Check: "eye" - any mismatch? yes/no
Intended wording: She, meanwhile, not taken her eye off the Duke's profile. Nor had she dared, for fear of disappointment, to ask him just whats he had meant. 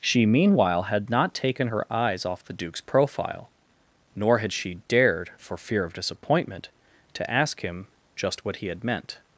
yes